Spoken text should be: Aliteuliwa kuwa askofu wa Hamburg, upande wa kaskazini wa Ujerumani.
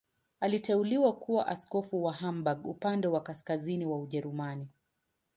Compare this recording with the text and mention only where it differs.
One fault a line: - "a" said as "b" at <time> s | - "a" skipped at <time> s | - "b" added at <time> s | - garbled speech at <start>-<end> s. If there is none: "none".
none